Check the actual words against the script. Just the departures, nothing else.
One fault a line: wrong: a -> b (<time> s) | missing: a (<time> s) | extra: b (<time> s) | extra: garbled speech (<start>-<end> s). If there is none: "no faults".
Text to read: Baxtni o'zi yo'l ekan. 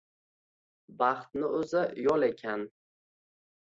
no faults